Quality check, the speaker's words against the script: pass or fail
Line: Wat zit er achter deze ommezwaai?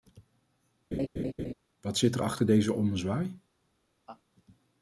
pass